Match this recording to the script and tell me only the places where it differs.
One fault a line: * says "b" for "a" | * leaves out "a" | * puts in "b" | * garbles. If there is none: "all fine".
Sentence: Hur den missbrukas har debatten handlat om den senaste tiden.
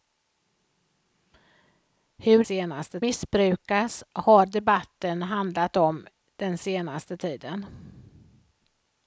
* says "senaste" for "den"